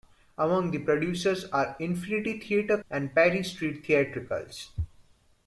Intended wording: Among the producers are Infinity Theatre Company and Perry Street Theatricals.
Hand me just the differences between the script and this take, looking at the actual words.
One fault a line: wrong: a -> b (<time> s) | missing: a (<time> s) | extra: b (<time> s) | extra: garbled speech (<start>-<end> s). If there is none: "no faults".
missing: Company (2.8 s)